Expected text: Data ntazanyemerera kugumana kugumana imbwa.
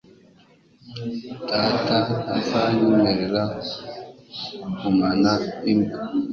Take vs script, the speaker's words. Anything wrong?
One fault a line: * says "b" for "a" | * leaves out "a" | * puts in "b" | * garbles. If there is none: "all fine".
* leaves out "kugumana"